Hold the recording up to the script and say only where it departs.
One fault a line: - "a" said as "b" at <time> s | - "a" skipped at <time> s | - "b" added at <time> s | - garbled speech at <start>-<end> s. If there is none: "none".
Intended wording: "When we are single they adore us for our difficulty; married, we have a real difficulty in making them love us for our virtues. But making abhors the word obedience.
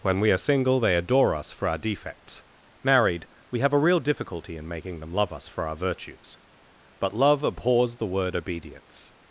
- "difficulty" said as "defects" at 1.8 s
- "making" said as "love" at 7.1 s